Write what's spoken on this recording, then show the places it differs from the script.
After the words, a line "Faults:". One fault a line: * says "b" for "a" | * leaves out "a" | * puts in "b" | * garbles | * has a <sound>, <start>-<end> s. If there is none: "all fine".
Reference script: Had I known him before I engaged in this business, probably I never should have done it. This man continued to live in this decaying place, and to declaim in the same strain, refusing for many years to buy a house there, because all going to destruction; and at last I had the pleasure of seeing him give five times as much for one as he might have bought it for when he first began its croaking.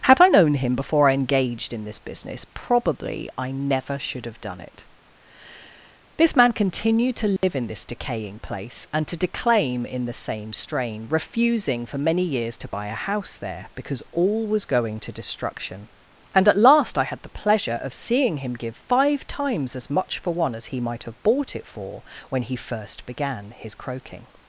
Had I known him before I engaged in this business, probably I never should have done it. This man continued to live in this decaying place, and to declaim in the same strain, refusing for many years to buy a house there, because all was going to destruction; and at last I had the pleasure of seeing him give five times as much for one as he might have bought it for when he first began his croaking.
Faults:
* has a dropout, 7.4-7.4 s
* puts in "was"
* says "his" for "its"